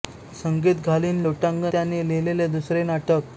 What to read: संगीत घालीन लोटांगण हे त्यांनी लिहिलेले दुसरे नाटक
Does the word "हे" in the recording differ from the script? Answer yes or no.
yes